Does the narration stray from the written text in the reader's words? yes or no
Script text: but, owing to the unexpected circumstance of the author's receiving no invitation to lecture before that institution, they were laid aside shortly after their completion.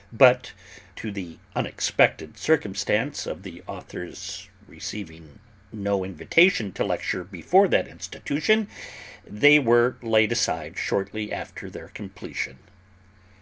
yes